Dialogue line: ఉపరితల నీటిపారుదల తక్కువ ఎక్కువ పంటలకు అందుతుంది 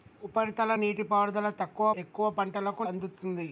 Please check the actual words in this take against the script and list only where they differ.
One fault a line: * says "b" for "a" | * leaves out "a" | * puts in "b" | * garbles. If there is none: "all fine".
all fine